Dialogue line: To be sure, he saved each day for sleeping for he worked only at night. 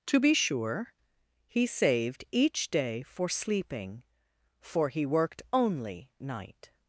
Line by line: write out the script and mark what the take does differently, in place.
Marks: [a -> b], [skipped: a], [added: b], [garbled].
To be sure, he saved each day for sleeping for he worked only [skipped: at] night.